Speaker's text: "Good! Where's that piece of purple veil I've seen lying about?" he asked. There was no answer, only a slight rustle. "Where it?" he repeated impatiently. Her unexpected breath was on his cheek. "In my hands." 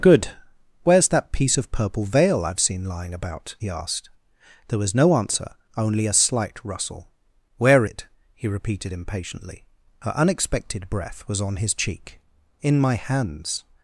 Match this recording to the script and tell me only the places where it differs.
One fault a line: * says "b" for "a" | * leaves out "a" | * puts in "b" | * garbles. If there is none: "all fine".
all fine